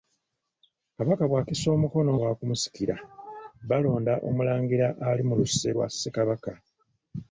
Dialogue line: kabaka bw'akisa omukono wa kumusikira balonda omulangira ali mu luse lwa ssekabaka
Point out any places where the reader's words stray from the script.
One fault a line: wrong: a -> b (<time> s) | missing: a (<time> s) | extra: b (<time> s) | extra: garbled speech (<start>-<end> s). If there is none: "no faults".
no faults